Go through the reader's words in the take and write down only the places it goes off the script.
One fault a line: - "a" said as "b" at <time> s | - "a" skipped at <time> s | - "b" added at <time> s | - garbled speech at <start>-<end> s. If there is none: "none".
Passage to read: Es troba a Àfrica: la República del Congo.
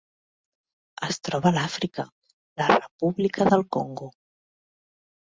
none